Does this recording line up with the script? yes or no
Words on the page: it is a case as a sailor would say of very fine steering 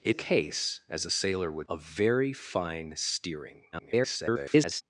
no